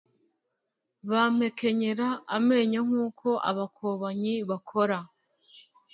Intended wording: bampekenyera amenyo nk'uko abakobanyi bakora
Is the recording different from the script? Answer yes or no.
no